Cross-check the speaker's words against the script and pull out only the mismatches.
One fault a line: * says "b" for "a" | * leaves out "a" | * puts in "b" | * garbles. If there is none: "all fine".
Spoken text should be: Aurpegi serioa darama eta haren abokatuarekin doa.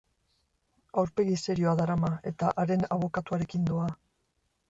all fine